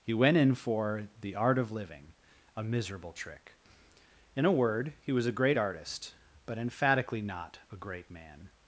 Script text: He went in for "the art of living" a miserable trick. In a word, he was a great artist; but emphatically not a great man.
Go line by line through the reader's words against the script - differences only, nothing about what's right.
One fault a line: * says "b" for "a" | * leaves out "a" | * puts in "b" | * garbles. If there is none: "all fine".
all fine